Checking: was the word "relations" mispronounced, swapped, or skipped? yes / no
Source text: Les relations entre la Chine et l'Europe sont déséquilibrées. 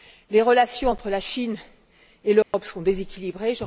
no